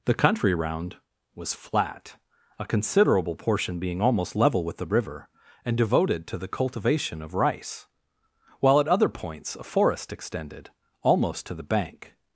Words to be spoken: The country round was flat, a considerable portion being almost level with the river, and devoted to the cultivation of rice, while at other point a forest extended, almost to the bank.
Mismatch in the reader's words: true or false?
true